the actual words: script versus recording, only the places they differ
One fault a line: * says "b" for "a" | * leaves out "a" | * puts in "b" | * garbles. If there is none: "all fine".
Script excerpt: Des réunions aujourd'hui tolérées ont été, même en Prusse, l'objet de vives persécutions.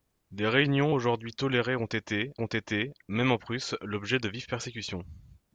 * puts in "ont été"